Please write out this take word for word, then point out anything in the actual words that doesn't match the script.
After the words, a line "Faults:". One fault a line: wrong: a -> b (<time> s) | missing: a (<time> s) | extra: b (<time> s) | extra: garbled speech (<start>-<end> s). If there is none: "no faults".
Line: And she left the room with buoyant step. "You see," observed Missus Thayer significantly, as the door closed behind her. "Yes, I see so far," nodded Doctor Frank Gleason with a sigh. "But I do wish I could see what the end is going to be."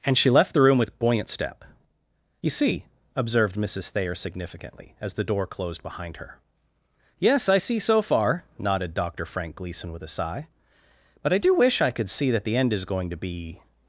And she left the room with buoyant step. "You see," observed Missus Thayer significantly, as the door closed behind her. "Yes, I see so far," nodded Doctor Frank Gleason with a sigh. "But I do wish I could see that the end is going to be."
Faults:
wrong: what -> that (12.3 s)